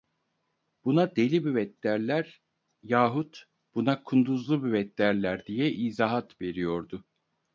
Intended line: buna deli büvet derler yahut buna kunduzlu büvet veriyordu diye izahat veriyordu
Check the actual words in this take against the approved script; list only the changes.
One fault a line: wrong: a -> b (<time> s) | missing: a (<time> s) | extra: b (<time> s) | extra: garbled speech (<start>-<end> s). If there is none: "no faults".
wrong: veriyordu -> derler (5.0 s)